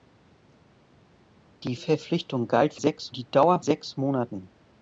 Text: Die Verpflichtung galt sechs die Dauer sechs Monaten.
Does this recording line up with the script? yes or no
yes